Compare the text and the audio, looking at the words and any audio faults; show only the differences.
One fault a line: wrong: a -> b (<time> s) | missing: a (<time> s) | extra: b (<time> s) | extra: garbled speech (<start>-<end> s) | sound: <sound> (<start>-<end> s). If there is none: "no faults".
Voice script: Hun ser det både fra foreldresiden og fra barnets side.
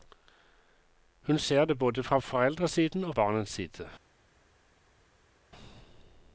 missing: fra (3.1 s)